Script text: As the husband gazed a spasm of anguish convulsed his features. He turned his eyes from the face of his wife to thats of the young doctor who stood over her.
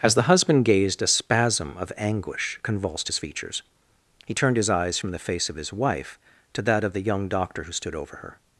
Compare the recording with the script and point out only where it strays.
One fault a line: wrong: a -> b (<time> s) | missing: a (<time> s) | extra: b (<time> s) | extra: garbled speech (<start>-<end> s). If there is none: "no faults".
wrong: thats -> that (6.6 s)